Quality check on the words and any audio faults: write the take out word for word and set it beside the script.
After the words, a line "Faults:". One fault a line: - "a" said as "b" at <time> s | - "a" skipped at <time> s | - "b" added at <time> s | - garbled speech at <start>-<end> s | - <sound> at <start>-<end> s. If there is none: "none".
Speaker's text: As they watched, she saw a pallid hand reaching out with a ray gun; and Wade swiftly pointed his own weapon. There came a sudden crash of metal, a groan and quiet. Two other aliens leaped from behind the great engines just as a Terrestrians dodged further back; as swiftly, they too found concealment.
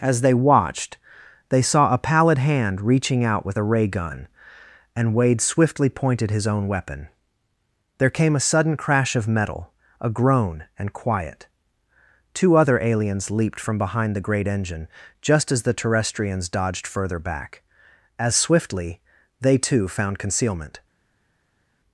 As they watched, they saw a pallid hand reaching out with a ray gun; and Wade swiftly pointed his own weapon. There came a sudden crash of metal, a groan and quiet. Two other aliens leaped from behind the great engine just as the Terrestrians dodged further back; as swiftly, they too found concealment.
Faults:
- "she" said as "they" at 1.5 s
- "engines" said as "engine" at 14.5 s
- "a" said as "the" at 15.6 s